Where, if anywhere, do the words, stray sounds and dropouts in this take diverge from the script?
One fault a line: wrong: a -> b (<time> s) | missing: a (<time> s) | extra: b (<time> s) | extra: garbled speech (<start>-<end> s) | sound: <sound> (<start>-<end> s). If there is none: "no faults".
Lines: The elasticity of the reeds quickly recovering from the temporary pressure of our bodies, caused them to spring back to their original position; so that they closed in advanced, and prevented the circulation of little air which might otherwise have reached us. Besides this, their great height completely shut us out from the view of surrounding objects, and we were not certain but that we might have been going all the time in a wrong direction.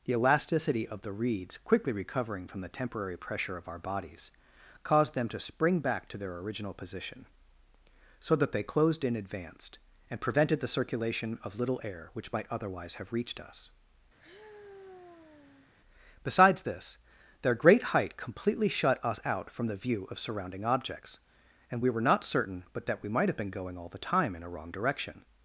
sound: sigh (14.2-15.7 s)